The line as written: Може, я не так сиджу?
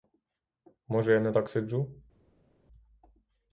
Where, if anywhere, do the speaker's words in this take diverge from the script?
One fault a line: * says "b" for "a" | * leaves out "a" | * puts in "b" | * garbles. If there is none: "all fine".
all fine